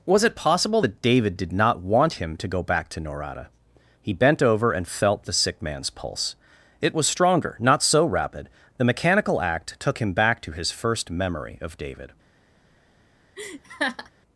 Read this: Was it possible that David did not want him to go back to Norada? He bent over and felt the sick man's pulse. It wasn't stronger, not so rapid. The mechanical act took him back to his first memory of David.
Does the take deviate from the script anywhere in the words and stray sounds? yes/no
yes